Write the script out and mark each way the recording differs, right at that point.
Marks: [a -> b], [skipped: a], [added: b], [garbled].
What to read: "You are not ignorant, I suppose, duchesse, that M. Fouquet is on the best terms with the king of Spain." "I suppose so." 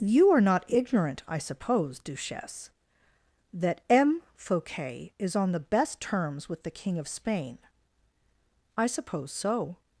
"You are not ignorant, I suppose, duchesse, that M. Fouquet is on the best terms with the king of Spain." "I suppose so."